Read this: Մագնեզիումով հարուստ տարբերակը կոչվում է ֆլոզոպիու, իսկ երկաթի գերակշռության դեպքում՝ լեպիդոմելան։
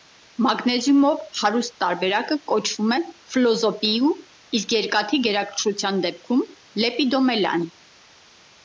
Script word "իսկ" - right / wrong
right